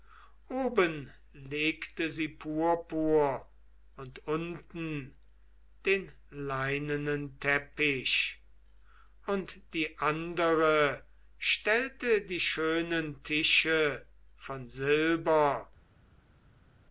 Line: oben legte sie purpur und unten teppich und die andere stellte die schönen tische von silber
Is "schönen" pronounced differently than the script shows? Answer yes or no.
no